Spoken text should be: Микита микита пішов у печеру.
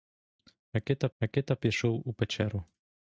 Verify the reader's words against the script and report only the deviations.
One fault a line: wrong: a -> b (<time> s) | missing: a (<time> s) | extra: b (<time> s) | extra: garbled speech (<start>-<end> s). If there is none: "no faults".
no faults